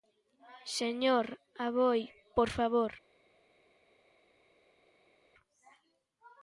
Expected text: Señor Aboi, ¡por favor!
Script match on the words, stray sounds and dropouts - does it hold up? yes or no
yes